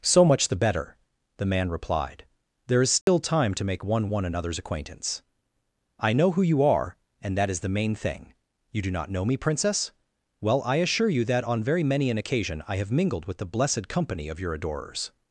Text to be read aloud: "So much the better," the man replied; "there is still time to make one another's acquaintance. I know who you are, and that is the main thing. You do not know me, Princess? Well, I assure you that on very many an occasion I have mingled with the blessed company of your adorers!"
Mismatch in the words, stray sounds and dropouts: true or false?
true